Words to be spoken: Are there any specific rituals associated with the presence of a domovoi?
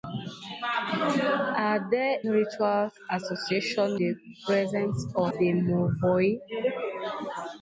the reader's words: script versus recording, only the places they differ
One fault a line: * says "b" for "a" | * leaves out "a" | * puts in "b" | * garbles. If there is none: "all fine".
* leaves out "any specific"
* leaves out "with"
* leaves out "a"